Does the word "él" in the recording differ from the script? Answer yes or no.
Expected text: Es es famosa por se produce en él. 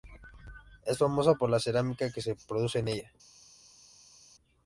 yes